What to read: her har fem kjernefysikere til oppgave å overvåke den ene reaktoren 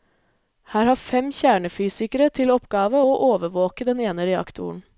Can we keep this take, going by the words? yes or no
yes